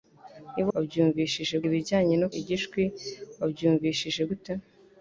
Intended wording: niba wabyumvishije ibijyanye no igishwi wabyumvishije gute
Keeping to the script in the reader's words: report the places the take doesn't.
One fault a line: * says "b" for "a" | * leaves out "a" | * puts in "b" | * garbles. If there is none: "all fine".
all fine